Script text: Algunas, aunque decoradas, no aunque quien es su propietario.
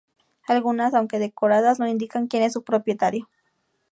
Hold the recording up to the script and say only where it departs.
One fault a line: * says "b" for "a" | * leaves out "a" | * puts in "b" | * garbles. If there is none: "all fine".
* says "indican" for "aunque"